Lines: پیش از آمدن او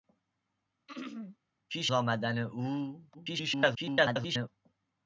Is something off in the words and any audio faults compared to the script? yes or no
yes